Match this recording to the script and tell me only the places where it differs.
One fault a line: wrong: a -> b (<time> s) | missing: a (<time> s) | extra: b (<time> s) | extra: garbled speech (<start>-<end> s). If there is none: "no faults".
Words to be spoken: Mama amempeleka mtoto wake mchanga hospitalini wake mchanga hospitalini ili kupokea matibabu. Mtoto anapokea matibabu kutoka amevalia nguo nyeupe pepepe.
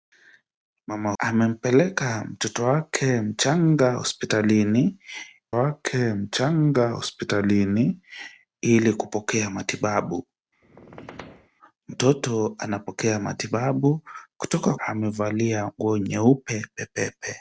no faults